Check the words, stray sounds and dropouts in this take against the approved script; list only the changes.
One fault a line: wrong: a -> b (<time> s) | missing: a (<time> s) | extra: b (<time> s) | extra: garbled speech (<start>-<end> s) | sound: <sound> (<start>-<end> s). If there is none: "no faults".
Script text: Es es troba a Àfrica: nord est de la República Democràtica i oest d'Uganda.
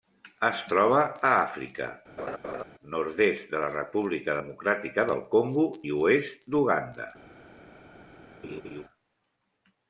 missing: es (0.6 s)
sound: laugh (2.2-2.6 s)
extra: del Congo (5.1 s)
sound: laugh (8.4-8.8 s)